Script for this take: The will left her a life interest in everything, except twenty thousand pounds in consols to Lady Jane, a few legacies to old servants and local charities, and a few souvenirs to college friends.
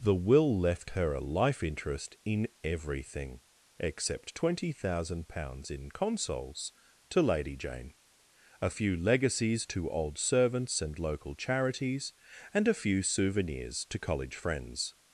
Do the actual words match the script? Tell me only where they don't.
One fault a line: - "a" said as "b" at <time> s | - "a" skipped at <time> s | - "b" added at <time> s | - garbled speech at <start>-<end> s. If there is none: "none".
none